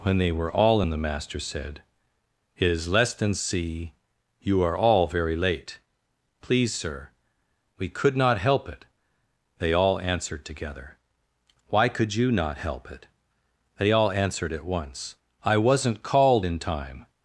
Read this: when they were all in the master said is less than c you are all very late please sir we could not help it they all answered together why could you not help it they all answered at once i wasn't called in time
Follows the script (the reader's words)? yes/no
no